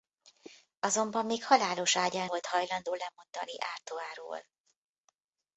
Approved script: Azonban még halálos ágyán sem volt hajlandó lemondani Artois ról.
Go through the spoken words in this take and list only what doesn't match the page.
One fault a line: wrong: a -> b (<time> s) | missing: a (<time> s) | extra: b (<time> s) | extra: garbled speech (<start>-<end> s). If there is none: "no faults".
missing: sem (2.3 s)